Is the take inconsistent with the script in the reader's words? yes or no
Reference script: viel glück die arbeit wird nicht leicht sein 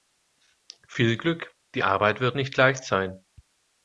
no